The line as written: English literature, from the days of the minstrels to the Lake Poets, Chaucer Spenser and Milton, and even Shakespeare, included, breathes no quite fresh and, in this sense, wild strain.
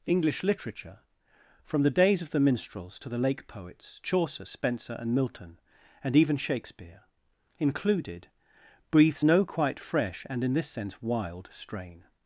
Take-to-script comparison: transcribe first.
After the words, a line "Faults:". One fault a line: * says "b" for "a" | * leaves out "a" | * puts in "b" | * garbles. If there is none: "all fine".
English literature, from the days of the minstrels to the Lake Poets, Chaucer Spenser and Milton, and even Shakespeare, included, breathes no quite fresh and, in this sense, wild strain.
Faults:
all fine